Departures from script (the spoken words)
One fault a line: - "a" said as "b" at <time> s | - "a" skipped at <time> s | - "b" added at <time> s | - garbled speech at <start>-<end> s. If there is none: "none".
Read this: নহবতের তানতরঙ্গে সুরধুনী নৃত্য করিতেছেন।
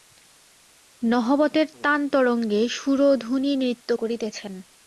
none